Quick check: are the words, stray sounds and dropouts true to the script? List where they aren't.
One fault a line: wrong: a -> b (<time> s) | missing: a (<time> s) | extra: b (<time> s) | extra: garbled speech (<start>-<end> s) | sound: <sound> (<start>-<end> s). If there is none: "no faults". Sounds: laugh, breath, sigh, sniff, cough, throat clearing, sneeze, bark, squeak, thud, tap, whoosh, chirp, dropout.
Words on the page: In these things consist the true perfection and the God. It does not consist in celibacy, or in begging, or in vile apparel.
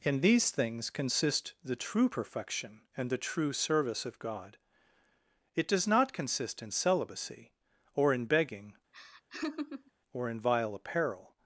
extra: true service of (3.2 s)
sound: laugh (8.9-9.9 s)